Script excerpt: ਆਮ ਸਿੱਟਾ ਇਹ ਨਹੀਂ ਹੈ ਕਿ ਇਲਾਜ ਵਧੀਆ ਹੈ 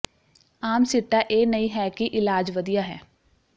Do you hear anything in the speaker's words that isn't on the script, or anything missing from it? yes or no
no